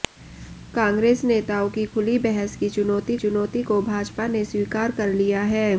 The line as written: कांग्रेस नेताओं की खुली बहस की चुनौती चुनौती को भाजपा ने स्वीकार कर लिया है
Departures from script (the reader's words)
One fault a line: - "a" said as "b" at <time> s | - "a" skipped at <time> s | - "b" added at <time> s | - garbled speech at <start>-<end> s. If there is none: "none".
none